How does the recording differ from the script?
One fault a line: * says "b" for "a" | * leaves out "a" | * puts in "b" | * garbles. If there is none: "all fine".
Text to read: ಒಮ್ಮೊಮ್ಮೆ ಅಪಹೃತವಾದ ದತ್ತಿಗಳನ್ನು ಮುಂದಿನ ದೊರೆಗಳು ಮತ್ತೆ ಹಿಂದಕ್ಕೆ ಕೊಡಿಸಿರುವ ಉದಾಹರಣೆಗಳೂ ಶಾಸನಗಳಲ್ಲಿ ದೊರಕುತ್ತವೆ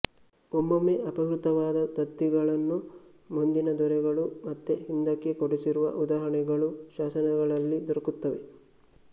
all fine